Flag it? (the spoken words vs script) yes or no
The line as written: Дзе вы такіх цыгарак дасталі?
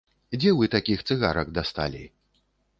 no